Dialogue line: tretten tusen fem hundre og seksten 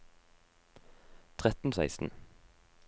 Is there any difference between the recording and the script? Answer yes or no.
yes